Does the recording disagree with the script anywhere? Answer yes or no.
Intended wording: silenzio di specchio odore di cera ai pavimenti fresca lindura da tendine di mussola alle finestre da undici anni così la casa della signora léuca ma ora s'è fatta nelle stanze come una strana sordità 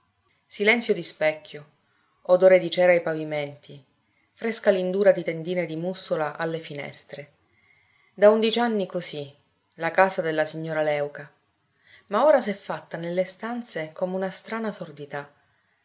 yes